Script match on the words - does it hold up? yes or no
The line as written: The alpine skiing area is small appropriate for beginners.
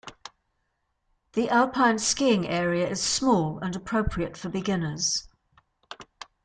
no